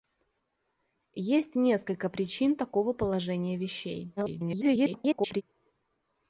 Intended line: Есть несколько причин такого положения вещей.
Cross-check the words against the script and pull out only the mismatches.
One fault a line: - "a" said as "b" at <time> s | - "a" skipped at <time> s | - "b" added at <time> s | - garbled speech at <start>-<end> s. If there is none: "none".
- garbled speech at 4.2-5.4 s